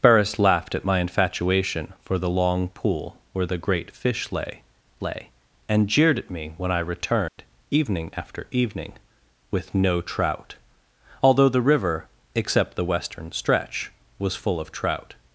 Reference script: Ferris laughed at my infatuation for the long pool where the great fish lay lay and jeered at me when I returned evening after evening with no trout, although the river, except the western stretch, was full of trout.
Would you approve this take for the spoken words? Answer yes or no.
yes